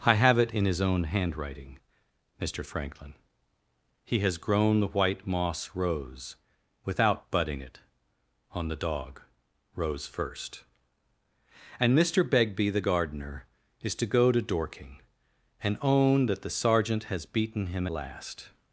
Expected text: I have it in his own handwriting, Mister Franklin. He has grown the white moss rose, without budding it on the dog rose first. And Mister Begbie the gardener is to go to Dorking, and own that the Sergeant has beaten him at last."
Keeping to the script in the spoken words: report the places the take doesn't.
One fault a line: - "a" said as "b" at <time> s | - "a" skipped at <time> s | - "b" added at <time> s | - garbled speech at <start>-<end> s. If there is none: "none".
- "at" skipped at 17.8 s